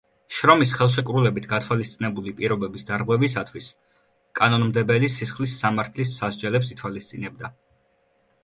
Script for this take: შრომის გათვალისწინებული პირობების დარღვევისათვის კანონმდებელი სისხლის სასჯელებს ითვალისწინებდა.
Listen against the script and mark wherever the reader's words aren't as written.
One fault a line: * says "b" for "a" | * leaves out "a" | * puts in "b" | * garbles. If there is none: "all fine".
* puts in "ხელშეკრულებით"
* puts in "სამართლის"